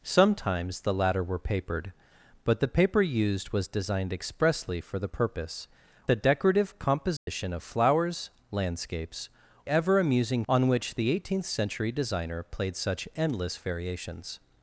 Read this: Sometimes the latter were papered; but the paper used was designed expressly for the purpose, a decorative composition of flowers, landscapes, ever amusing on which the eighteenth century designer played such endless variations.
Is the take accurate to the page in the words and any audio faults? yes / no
no